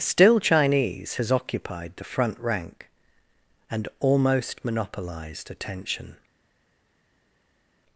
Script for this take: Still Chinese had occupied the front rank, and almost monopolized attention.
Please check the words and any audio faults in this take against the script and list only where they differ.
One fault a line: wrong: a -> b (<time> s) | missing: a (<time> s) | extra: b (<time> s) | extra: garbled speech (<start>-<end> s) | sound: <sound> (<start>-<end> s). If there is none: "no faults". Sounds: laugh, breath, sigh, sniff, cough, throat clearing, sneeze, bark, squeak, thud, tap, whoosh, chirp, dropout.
wrong: had -> has (1.2 s)